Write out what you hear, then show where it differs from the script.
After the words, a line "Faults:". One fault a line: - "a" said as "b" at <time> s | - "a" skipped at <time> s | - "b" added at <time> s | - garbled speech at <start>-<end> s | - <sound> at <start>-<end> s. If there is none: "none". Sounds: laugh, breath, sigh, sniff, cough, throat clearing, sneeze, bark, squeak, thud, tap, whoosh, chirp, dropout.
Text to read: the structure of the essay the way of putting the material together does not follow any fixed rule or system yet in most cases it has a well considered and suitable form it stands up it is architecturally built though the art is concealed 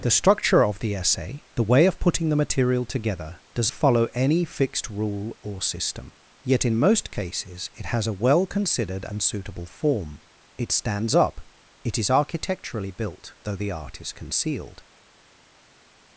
the structure of the essay the way of putting the material together does follow any fixed rule or system yet in most cases it has a well considered and suitable form it stands up it is architecturally built though the art is concealed
Faults:
- "not" skipped at 3.7 s